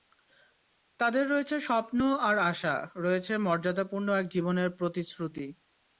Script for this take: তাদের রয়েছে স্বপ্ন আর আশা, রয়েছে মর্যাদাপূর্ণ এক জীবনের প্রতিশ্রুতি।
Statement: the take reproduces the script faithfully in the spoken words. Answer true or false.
true